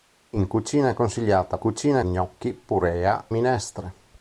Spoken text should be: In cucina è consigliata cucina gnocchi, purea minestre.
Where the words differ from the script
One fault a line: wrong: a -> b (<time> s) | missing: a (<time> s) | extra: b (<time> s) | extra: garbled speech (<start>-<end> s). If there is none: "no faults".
no faults